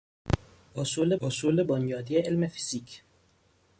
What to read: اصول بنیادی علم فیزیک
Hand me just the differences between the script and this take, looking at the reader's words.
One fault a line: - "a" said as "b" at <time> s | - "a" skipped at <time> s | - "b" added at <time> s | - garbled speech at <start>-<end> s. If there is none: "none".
- "اصول" added at 1.2 s